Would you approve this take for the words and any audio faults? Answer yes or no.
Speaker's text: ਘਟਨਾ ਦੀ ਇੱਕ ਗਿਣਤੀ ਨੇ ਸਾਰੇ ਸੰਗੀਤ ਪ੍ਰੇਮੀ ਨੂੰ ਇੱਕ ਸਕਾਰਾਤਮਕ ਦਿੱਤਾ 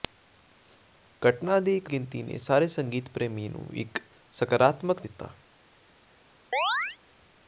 no